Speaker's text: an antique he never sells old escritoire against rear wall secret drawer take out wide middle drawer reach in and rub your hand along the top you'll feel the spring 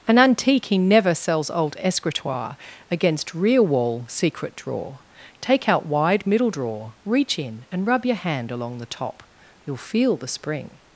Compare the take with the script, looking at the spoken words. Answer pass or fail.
pass